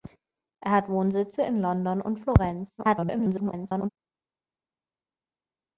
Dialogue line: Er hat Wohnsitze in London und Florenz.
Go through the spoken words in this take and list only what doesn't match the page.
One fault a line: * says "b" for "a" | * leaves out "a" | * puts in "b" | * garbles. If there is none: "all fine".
* garbles